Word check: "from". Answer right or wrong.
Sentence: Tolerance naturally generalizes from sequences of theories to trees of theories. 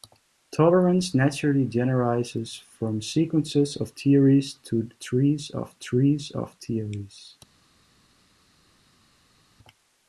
right